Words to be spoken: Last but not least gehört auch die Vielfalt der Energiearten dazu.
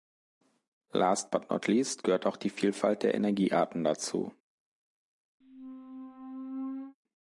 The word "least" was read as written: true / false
true